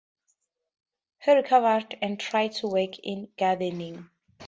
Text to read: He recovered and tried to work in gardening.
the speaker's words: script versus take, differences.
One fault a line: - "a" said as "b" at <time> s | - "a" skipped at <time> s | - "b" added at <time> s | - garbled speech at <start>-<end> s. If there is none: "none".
none